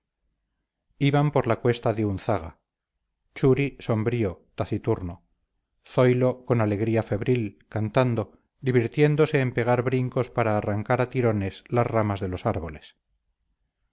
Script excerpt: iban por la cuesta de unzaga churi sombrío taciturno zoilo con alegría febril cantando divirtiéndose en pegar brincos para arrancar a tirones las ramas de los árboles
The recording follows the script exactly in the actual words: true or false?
true